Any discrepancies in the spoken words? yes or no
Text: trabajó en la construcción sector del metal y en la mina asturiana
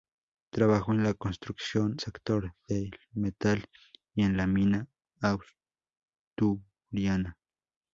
no